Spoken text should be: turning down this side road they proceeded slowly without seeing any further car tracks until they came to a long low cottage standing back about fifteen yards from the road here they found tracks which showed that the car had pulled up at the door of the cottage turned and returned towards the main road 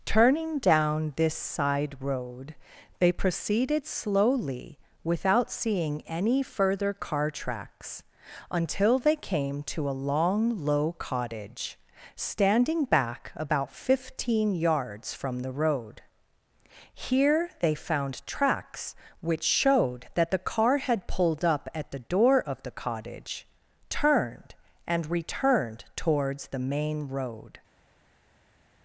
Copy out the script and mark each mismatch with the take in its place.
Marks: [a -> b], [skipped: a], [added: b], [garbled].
turning down this side road they proceeded slowly without seeing any further car tracks until they came to a long low cottage standing back about fifteen yards from the road here they found tracks which showed that the car had pulled up at the door of the cottage turned and returned towards the main road